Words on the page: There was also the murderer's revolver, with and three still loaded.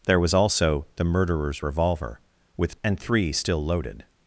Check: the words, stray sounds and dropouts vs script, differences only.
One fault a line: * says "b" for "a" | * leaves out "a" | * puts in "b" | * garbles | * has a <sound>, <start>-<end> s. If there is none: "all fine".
all fine